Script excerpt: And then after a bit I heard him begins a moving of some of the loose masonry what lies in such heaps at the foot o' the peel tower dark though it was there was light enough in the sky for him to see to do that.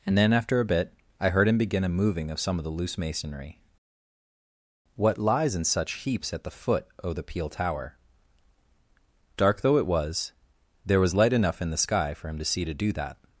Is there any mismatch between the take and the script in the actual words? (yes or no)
yes